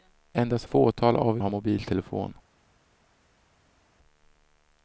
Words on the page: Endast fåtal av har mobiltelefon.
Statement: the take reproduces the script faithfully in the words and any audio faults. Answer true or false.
true